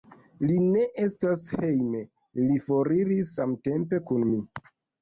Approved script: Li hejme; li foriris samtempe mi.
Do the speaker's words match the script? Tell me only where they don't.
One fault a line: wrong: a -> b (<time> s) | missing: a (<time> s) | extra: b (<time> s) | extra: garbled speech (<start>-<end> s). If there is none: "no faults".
extra: ne estas (0.7 s)
extra: kun (4.1 s)